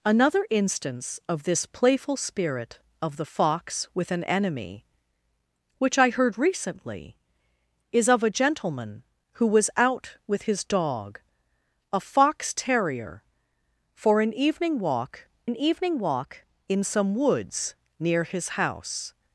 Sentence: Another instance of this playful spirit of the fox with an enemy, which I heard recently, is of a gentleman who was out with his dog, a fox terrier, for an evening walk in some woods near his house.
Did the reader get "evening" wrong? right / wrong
right